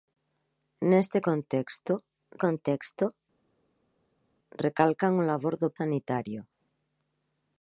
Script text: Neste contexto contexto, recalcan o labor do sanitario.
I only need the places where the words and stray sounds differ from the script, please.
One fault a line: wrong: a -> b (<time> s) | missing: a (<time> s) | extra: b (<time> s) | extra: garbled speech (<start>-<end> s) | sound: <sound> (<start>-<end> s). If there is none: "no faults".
no faults